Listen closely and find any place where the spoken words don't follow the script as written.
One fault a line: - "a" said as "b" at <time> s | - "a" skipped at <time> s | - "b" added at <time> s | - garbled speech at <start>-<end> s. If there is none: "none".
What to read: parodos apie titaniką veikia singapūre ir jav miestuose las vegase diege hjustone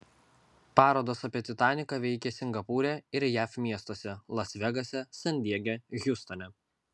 - "san" added at 5.2 s